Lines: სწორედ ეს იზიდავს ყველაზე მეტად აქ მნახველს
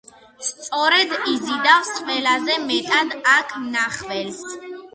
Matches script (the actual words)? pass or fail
fail